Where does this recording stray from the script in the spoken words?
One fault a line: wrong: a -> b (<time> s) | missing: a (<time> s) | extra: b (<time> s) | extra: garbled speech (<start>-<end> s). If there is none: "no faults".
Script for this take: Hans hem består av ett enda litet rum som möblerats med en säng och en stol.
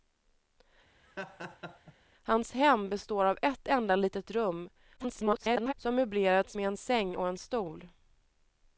extra: garbled speech (5.0-5.7 s)